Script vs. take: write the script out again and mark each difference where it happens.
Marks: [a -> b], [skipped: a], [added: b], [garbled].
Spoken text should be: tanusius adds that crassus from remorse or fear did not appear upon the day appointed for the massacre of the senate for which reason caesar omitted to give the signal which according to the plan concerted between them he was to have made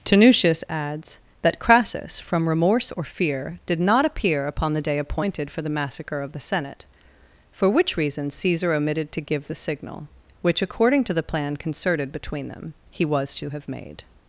tanusius adds that crassus from remorse or fear did not appear upon the day appointed for the massacre of the senate for which reason caesar omitted to give the signal which according to the plan concerted between them he was to have made